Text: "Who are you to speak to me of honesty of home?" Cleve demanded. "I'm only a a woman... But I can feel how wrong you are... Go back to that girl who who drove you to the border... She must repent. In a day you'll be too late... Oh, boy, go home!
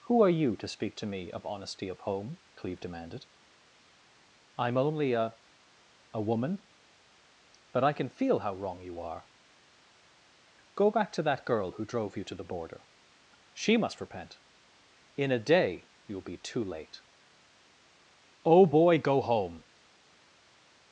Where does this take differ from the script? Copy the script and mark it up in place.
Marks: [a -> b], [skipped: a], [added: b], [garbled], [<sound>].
"Who are you to speak to me of honesty of home?" Cleve demanded. "I'm only a a woman... But I can feel how wrong you are... Go back to that girl who [skipped: who] drove you to the border... She must repent. In a day you'll be too late... Oh, boy, go home!